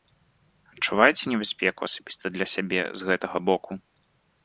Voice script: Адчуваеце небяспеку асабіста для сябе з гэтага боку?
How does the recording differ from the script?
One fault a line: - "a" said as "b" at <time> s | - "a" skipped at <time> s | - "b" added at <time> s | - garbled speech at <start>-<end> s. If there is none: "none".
none